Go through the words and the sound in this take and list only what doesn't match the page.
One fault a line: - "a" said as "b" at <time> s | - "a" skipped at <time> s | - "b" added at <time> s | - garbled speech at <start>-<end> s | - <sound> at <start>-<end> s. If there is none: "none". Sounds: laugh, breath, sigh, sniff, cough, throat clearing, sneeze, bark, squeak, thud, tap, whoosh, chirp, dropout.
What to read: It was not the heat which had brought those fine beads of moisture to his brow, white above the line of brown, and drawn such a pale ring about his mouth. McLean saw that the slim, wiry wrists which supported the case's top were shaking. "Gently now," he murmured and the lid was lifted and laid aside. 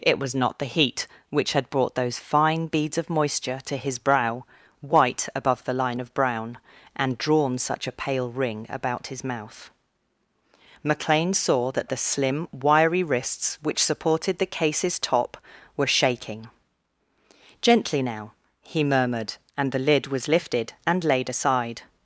none